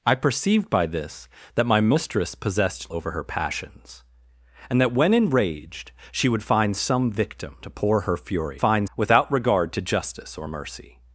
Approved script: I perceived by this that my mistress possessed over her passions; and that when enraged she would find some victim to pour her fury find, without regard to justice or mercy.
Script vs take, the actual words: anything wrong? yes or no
no